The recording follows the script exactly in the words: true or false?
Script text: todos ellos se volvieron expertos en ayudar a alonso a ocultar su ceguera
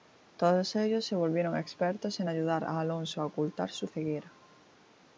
true